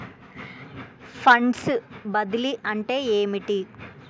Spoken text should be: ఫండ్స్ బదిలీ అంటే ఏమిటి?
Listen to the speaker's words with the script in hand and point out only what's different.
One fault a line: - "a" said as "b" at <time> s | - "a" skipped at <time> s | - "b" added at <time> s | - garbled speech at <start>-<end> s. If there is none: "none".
none